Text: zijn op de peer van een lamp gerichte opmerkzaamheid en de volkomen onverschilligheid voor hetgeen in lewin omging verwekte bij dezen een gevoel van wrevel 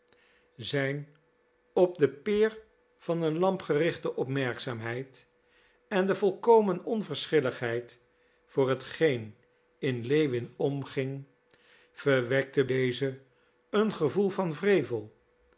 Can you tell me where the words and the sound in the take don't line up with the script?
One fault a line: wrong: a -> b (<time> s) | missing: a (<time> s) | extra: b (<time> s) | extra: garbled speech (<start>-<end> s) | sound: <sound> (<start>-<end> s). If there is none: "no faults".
missing: bij (12.7 s)